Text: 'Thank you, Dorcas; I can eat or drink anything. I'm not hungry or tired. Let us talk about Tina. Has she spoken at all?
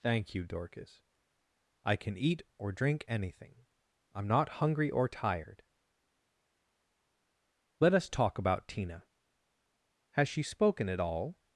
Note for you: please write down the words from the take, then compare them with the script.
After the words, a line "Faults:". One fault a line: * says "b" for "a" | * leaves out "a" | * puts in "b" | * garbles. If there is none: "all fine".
'Thank you, Dorcas; I can eat or drink anything. I'm not hungry or tired. Let us talk about Tina. Has she spoken at all?
Faults:
all fine